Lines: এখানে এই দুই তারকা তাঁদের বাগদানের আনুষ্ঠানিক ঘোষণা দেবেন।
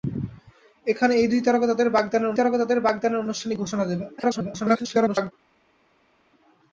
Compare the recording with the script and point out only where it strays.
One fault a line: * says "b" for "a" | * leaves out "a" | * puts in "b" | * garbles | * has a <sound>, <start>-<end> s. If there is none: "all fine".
* puts in "তারকা তাঁদের বাগদানের"
* garbles